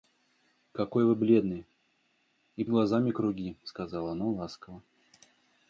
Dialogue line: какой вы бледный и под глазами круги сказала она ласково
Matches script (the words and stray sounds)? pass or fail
fail